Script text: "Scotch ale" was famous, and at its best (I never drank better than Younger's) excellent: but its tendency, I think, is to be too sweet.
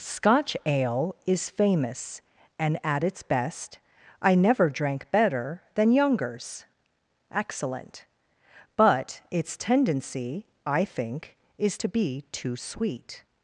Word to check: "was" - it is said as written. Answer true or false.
false